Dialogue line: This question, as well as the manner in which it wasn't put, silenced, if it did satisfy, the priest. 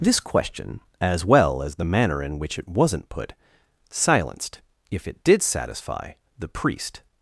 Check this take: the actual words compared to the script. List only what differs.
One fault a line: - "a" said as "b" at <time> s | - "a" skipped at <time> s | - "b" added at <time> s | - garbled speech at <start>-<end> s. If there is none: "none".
none